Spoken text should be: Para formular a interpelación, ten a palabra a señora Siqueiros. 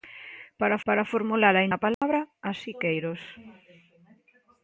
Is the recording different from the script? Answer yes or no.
yes